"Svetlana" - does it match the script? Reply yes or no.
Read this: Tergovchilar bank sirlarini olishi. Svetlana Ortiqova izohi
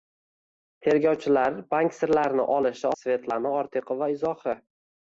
yes